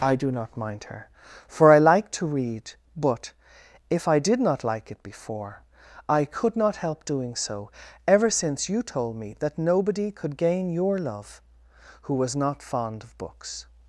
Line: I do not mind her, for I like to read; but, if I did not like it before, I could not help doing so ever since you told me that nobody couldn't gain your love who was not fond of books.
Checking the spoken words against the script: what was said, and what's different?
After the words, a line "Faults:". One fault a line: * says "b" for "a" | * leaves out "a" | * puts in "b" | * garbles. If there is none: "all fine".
I do not mind her, for I like to read; but, if I did not like it before, I could not help doing so ever since you told me that nobody could gain your love who was not fond of books.
Faults:
* says "could" for "couldn't"